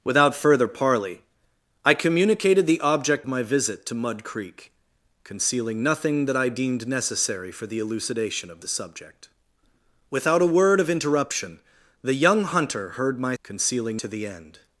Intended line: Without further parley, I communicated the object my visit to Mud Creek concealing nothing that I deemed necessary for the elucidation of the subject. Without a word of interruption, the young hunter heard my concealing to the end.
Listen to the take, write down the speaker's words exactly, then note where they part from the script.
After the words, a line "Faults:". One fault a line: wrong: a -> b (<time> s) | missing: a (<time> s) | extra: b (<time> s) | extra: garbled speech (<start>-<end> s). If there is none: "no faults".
Without further parley, I communicated the object my visit to Mud Creek concealing nothing that I deemed necessary for the elucidation of the subject. Without a word of interruption, the young hunter heard my concealing to the end.
Faults:
no faults